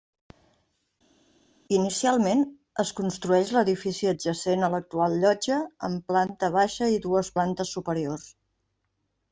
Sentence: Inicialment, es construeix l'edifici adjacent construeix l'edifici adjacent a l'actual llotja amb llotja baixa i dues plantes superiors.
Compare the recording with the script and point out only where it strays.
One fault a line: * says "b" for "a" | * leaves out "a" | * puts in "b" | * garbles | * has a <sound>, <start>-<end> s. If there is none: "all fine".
* leaves out "construeix l'edifici adjacent"
* says "planta" for "llotja"